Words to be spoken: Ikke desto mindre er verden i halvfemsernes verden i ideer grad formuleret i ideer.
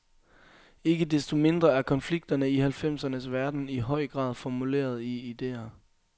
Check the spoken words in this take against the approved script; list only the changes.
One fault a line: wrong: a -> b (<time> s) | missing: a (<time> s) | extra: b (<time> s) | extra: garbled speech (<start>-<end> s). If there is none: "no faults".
wrong: verden -> konflikterne (1.8 s)
wrong: ideer -> høj (3.8 s)